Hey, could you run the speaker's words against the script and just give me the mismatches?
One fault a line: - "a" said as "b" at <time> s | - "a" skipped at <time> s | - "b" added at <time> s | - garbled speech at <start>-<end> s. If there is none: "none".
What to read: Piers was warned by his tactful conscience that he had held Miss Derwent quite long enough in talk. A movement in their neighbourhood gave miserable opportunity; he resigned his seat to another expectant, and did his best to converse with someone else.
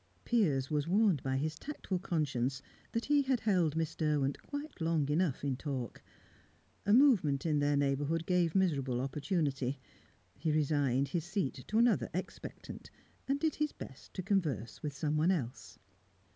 none